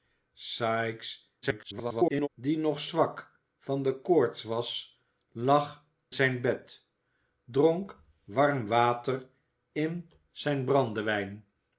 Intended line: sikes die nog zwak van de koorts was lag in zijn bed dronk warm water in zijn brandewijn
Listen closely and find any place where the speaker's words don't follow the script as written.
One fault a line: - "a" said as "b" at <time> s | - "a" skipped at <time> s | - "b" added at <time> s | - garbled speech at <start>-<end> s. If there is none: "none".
- garbled speech at 1.4-2.3 s
- "in" skipped at 5.8 s